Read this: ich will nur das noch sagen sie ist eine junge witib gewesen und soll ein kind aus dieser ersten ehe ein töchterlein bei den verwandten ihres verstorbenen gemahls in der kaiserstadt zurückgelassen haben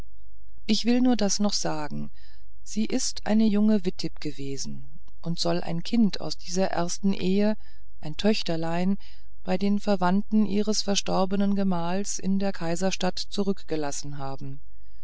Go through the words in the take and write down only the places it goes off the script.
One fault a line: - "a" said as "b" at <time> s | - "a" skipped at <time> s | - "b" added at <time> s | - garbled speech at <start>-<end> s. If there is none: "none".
none